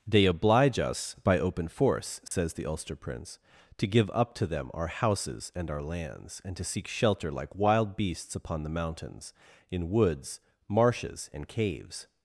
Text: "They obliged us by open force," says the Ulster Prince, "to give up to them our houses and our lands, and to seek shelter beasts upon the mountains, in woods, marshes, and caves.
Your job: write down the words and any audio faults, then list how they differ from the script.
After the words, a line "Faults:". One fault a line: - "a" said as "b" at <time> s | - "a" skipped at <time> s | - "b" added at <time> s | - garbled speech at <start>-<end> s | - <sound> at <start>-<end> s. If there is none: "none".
"They oblige us by open force," says the Ulster Prince, "to give up to them our houses and our lands, and to seek shelter like wild beasts upon the mountains, in woods, marshes, and caves.
Faults:
- "obliged" said as "oblige" at 0.2 s
- dropout at 2.3-2.3 s
- "like wild" added at 7.3 s